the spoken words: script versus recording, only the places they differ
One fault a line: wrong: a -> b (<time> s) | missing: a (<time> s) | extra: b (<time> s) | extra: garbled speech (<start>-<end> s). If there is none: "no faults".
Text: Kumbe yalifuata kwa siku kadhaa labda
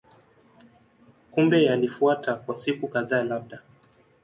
no faults